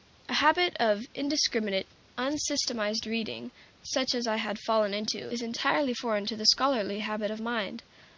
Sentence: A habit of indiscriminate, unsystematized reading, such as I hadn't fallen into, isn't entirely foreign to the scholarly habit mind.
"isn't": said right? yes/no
no